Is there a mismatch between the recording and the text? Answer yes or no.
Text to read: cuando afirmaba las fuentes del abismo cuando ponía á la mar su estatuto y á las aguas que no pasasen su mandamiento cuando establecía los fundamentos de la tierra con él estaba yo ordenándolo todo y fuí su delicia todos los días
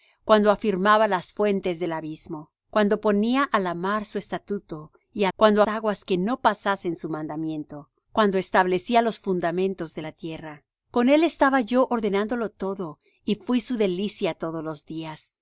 yes